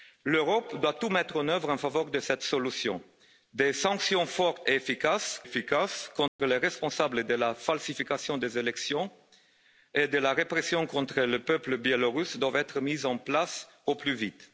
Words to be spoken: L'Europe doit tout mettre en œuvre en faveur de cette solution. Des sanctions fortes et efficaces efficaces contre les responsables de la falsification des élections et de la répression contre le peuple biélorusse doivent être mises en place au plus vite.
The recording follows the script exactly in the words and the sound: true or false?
false